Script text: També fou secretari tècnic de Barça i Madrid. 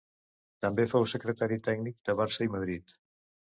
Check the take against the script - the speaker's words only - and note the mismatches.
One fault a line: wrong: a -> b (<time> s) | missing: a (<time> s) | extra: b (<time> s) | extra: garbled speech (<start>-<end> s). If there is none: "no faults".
no faults